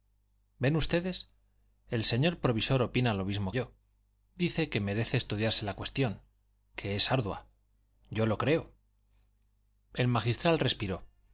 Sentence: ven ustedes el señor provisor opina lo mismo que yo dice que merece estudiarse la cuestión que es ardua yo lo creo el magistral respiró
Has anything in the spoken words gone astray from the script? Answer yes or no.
yes